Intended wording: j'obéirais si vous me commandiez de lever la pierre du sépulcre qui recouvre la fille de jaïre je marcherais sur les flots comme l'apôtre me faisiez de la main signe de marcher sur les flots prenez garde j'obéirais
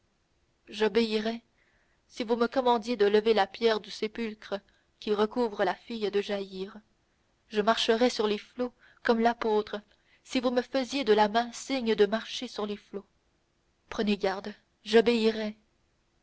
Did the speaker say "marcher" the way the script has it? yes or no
yes